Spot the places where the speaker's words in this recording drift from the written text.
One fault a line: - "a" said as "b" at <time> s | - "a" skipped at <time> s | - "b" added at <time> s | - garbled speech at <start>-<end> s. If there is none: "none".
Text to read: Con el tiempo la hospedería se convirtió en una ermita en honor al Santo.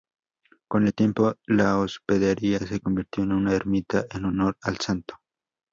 none